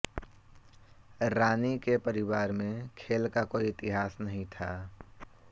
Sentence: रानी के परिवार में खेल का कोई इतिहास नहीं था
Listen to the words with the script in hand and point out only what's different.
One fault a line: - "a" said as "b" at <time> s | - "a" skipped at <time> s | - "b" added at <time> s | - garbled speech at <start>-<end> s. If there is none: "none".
none